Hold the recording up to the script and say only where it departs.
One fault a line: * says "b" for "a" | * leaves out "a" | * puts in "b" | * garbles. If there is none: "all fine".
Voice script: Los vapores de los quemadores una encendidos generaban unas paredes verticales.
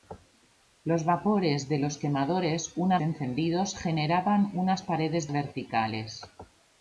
all fine